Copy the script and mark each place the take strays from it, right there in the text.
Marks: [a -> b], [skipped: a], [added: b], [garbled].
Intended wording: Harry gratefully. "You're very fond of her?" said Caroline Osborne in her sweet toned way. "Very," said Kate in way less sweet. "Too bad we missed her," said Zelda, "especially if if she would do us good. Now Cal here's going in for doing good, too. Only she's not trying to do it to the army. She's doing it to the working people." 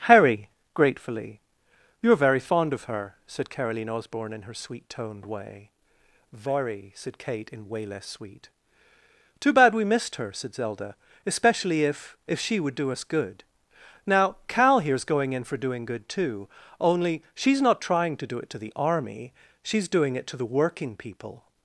Harry gratefully. "You're very fond of her?" said Caroline Osborne in her sweet toned way. "Very," said Kate in way less sweet. "Too bad we missed her," said Zelda, "especially if if she would do us good. Now Cal here's going in for doing good, too. Only she's not trying to do it to the army. She's doing it to the working people."